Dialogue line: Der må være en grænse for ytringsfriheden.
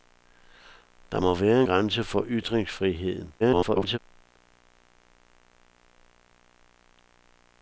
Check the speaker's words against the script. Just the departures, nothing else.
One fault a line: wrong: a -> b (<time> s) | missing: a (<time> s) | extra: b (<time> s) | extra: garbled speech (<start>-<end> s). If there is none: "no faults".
missing: en (1.6 s)
extra: garbled speech (3.4-4.0 s)